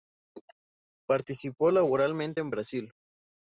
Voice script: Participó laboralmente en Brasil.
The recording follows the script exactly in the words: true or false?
true